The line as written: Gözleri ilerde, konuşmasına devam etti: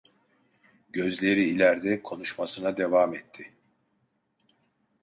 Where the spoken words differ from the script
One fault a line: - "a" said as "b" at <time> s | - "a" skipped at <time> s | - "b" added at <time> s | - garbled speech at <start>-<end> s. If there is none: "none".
none